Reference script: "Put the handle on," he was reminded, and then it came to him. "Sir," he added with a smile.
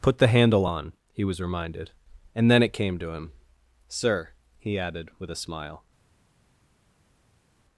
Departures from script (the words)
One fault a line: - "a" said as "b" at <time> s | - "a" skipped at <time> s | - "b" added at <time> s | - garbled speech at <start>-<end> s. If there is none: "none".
none